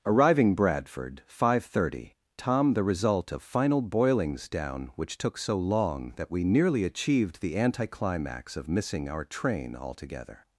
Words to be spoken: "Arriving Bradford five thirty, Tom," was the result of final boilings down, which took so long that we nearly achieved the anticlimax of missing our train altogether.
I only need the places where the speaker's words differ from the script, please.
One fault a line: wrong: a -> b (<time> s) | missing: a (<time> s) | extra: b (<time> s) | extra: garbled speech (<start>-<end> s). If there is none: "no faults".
missing: was (2.7 s)